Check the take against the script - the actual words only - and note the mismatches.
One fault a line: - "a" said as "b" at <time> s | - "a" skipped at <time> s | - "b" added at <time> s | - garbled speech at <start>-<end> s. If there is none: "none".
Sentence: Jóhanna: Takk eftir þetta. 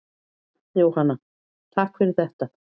- "eftir" said as "fyrir" at 2.0 s